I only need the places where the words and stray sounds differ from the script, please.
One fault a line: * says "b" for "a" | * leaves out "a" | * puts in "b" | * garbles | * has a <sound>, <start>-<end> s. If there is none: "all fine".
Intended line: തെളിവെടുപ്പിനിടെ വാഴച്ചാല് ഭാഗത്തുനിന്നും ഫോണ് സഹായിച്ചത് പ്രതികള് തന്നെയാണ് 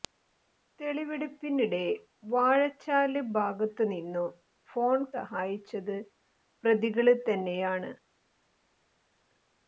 all fine